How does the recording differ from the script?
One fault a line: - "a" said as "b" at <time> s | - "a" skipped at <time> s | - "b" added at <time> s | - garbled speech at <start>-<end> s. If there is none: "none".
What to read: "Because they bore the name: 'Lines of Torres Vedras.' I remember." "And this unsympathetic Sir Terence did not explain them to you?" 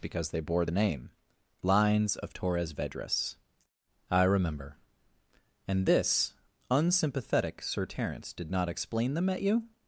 - "to" said as "at" at 9.3 s